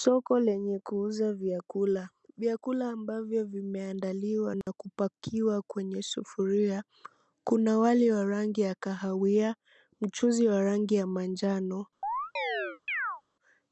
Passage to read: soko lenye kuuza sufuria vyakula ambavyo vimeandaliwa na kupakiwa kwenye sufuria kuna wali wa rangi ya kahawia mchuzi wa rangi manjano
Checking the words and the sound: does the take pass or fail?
fail